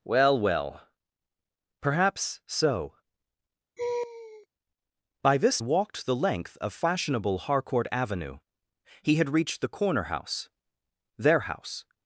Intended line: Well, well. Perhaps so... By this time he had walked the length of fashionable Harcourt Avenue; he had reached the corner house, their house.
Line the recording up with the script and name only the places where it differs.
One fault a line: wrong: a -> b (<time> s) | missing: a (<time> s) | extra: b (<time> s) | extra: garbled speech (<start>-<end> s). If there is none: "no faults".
missing: time he had (5.6 s)